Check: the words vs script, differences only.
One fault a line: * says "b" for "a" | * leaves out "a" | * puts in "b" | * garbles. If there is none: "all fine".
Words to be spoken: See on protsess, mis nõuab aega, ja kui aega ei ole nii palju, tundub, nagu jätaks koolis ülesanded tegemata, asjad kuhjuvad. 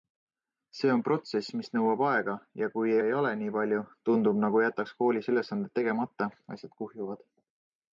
* leaves out "aega"